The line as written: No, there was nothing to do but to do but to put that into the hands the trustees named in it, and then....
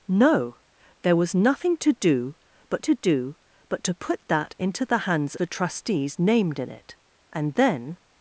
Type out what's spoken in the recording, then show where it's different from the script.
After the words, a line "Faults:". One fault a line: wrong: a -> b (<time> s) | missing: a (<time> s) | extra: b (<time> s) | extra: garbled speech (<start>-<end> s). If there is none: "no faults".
No, there was nothing to do but to do but to put that into the hands the trustees named in it, and then....
Faults:
no faults